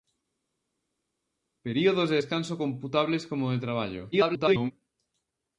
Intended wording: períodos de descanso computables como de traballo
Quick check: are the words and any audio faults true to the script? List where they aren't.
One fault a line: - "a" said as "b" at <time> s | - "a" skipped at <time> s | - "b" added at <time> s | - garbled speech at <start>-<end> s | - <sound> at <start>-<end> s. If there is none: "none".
- garbled speech at 4.1-4.7 s